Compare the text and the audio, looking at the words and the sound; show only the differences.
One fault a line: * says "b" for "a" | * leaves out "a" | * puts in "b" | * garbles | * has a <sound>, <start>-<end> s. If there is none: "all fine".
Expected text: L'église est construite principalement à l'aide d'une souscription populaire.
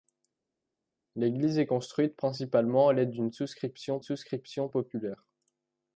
* puts in "souscription"